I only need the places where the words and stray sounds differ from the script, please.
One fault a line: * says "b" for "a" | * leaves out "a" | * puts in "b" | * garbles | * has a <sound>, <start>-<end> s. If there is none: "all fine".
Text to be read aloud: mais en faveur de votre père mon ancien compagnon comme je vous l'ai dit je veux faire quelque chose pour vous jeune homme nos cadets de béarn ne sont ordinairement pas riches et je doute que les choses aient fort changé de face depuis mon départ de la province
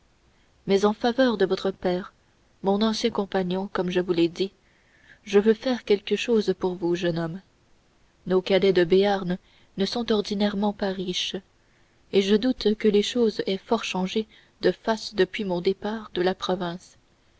all fine